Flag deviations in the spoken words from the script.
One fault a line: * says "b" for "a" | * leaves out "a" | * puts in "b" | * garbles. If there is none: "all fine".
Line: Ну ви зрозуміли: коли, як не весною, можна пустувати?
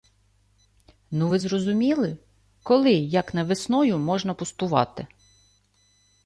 all fine